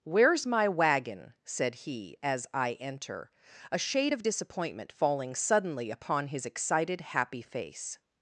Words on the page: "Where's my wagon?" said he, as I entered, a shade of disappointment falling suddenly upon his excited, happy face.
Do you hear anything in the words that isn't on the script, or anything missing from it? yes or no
yes